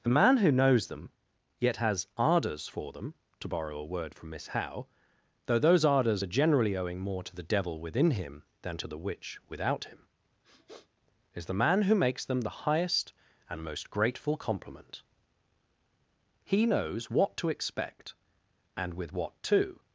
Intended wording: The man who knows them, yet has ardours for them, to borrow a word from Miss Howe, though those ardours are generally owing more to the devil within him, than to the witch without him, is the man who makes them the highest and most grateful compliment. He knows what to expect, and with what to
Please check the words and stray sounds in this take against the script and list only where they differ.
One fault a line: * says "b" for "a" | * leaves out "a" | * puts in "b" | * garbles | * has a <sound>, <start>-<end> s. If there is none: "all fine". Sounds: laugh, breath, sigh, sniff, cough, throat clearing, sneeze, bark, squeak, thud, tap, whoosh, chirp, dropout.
* has a sniff, 10.4-10.9 s